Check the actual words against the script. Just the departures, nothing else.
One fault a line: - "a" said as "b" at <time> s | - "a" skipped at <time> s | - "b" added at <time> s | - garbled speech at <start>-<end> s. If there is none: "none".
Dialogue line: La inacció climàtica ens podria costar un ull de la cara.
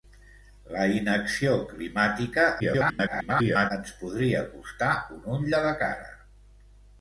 - garbled speech at 2.6-3.7 s